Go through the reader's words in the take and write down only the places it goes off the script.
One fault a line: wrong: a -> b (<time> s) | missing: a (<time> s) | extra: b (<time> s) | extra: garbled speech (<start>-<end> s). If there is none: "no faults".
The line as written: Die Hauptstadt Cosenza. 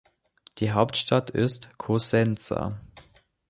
extra: ist (1.3 s)